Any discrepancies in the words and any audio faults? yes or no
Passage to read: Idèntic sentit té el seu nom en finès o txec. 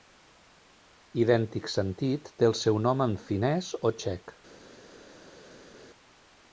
no